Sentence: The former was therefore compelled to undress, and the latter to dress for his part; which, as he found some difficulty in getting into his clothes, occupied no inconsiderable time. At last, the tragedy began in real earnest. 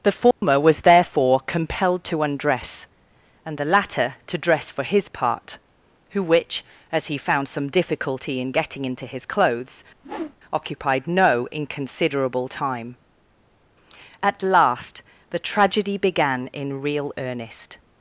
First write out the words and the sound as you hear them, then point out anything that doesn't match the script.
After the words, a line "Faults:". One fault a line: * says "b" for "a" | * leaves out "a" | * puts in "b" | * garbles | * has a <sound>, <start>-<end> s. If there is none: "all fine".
The former was therefore compelled to undress, and the latter to dress for his part; who which, as he found some difficulty in getting into his clothes, occupied no inconsiderable time. At last, the tragedy began in real earnest.
Faults:
* has a dropout, 0.3-0.4 s
* puts in "who"
* has a whoosh, 10.0-10.4 s